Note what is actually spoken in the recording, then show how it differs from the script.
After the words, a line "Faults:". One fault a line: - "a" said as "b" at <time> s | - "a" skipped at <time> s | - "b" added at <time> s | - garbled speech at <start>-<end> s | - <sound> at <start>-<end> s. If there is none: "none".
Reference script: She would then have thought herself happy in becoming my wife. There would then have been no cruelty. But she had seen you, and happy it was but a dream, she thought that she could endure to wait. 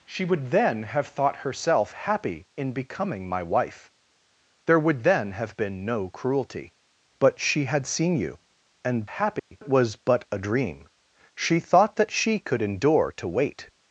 She would then have thought herself happy in becoming my wife. There would then have been no cruelty. But she had seen you, and happy it was but a dream, she thought that she could endure to wait.
Faults:
- dropout at 9.4-9.5 s